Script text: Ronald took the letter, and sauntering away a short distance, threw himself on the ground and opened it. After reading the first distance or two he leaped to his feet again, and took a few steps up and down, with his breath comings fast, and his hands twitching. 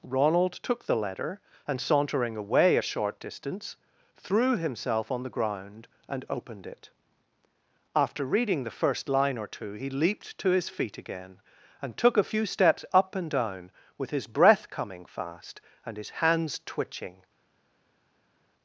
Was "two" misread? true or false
false